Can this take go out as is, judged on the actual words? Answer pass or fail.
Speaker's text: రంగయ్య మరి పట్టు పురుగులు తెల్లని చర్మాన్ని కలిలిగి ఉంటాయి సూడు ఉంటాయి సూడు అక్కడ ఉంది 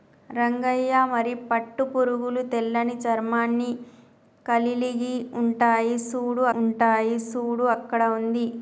pass